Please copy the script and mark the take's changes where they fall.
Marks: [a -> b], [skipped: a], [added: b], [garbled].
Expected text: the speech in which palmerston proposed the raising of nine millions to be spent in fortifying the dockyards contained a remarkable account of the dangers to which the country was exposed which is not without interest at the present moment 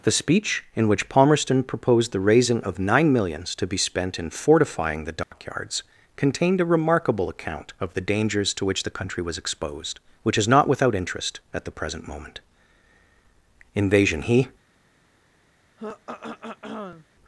the speech in which palmerston proposed the raising of nine millions to be spent in fortifying the dockyards contained a remarkable account of the dangers to which the country was exposed which is not without interest at the present moment [added: invasion he]